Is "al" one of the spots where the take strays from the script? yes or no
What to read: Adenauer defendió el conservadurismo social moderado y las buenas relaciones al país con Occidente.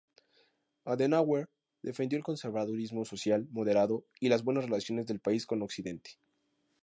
yes